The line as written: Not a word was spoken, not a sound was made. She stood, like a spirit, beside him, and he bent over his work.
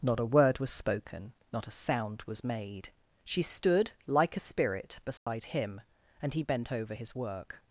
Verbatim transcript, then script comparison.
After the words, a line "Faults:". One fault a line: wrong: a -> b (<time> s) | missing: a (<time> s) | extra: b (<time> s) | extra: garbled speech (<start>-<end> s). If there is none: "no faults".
Not a word was spoken, not a sound was made. She stood, like a spirit, beside him, and he bent over his work.
Faults:
no faults